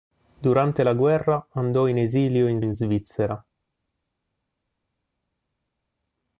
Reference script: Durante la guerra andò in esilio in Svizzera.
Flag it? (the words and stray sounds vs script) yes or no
yes